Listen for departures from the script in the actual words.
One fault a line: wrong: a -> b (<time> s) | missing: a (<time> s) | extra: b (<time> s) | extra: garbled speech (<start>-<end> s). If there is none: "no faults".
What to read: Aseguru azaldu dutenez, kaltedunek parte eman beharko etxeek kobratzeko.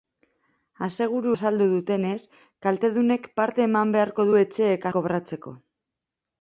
no faults